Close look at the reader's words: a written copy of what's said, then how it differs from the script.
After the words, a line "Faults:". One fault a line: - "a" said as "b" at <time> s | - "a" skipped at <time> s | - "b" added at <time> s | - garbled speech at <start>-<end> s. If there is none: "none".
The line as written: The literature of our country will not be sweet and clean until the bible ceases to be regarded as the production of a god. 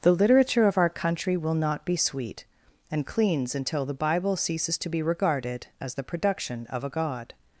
The literature of our country will not be sweet and cleans until the bible ceases to be regarded as the production of a god.
Faults:
- "clean" said as "cleans" at 3.0 s